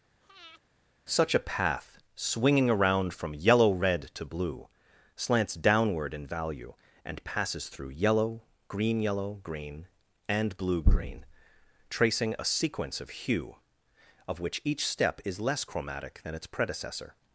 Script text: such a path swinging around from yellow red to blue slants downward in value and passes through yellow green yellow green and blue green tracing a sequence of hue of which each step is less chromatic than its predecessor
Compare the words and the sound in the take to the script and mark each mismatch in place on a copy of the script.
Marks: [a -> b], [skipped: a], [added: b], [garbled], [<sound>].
[breath] such a path swinging around from yellow red to blue slants downward in value and passes through yellow green yellow green and blue green tracing a sequence of hue of which each step is less chromatic than its predecessor